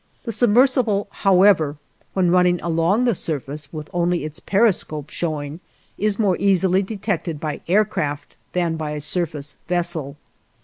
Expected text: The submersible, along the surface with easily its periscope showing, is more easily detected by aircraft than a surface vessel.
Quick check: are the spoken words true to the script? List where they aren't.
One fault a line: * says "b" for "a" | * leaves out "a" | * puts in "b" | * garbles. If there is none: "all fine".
* puts in "however when running"
* says "only" for "easily"
* puts in "by"